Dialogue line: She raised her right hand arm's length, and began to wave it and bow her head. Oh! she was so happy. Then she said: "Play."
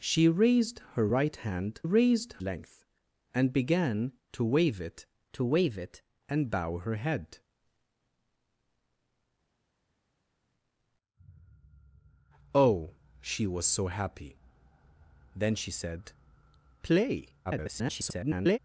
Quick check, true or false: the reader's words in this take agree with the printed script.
false